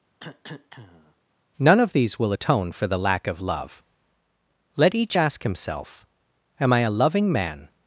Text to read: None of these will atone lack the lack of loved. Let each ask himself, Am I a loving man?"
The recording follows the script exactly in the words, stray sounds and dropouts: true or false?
false